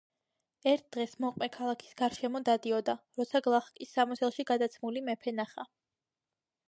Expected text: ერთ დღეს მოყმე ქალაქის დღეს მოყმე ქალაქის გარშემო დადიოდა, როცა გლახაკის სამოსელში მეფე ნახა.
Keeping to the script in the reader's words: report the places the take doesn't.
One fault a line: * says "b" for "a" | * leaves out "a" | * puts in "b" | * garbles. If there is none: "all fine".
* leaves out "დღეს მოყმე ქალაქის"
* puts in "გადაცმული"